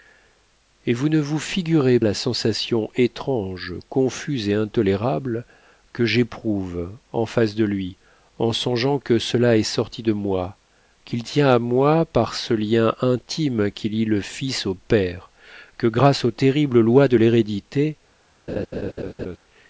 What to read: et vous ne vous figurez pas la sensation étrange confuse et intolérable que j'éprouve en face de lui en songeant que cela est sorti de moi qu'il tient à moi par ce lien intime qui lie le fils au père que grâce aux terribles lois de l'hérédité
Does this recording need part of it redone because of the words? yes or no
yes